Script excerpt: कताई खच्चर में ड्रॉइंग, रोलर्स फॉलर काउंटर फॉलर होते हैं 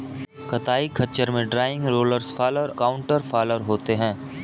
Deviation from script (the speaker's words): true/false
false